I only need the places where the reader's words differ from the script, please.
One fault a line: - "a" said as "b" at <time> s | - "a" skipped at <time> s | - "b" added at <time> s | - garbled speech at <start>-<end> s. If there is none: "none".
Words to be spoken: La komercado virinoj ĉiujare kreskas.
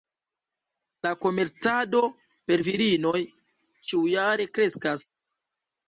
- "per" added at 2.5 s